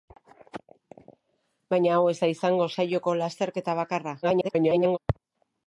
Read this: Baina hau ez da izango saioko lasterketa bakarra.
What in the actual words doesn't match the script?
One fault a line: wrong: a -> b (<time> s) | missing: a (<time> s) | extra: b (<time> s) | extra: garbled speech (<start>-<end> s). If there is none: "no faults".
extra: garbled speech (4.2-5.0 s)